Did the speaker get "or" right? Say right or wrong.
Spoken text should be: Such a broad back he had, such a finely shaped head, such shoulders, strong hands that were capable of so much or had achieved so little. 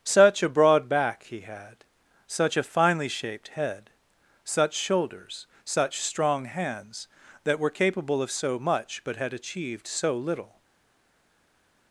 wrong